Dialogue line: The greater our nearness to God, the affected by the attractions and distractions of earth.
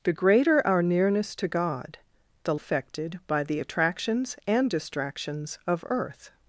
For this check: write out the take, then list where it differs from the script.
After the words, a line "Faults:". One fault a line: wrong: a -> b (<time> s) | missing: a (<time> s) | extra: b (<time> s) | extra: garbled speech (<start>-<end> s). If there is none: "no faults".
The greater our nearness to God, the affected by the attractions and distractions of earth.
Faults:
no faults